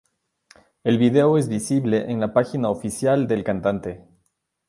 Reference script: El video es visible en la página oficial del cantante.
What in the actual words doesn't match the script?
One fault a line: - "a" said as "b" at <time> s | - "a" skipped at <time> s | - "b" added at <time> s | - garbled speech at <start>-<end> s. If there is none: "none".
none